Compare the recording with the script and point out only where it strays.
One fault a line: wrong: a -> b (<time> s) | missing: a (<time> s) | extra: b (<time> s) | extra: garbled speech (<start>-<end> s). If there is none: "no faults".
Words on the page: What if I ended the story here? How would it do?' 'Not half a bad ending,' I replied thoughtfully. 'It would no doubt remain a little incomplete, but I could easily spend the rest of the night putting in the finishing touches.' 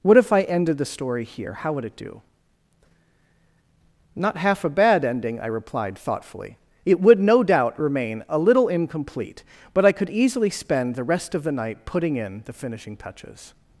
no faults